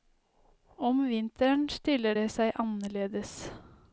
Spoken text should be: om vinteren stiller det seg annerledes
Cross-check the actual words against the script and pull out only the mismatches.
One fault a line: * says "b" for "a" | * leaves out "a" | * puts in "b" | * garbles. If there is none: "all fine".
all fine